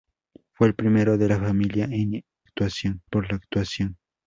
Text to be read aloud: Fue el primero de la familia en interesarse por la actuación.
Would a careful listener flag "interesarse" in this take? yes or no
yes